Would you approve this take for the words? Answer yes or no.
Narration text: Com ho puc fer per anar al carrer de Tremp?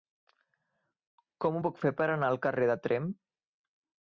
yes